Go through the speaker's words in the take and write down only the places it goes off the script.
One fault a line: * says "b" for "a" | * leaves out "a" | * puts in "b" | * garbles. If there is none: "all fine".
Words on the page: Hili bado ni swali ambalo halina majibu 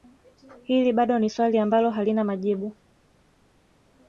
all fine